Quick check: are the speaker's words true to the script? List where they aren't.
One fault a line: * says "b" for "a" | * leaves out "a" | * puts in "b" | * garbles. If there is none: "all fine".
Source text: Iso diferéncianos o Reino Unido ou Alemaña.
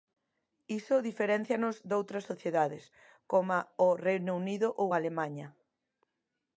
* puts in "doutras sociedades coma"